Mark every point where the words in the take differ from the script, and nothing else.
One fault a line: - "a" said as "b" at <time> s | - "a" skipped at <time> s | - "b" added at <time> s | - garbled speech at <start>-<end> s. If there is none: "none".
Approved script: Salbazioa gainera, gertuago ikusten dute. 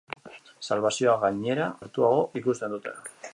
none